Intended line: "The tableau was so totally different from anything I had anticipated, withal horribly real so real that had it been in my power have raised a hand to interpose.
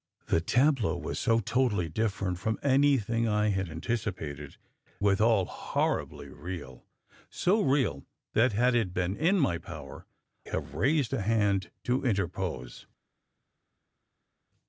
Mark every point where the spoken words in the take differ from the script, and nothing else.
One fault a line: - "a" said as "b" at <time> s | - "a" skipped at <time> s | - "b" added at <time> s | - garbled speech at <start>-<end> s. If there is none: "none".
none